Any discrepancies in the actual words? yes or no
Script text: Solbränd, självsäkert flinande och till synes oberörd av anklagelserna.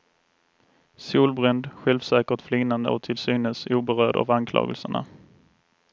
no